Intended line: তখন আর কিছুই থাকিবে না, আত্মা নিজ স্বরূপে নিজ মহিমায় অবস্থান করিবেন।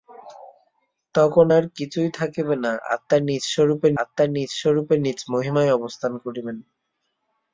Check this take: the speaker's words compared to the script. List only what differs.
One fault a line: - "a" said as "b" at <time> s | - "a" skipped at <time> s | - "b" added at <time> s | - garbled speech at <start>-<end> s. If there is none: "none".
- "আত্মা নিজ স্বরূপে" added at 4.0 s